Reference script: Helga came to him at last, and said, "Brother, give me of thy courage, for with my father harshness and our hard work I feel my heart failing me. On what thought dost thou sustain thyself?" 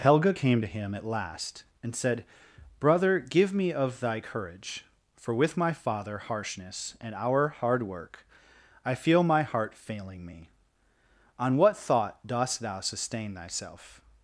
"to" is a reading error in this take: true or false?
false